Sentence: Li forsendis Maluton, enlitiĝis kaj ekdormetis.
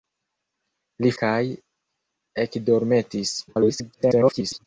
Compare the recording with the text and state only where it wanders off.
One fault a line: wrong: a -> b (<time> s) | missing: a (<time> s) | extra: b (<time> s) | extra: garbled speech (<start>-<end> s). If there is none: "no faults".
missing: forsendis Maluton enlitiĝis (1.1 s)
extra: garbled speech (3.5-4.7 s)